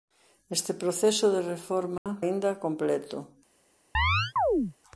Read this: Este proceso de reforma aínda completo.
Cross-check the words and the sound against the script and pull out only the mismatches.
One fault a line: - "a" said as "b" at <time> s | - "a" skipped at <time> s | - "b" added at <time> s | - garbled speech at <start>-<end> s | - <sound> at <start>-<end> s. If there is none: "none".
- dropout at 2.0-2.1 s
- chirp at 3.9-4.7 s